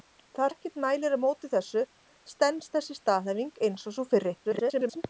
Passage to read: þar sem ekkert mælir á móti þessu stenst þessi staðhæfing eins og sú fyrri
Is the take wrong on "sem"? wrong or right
wrong